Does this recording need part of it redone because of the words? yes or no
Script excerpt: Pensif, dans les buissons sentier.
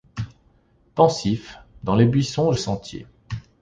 no